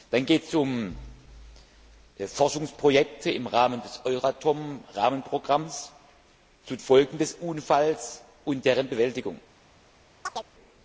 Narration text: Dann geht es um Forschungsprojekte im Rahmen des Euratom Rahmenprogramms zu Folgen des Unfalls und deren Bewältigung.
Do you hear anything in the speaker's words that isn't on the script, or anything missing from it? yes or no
no